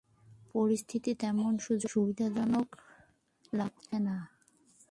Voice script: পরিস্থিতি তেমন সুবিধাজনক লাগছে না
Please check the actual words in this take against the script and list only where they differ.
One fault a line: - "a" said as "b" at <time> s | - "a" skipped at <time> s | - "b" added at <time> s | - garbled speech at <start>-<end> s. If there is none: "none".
none